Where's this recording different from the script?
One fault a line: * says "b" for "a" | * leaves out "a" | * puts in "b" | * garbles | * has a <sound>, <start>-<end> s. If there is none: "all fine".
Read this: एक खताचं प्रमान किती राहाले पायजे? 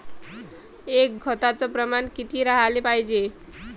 all fine